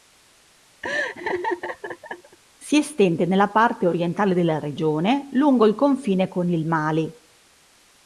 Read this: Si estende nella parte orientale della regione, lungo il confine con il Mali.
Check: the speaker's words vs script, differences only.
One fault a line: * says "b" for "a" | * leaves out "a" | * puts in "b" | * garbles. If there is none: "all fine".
all fine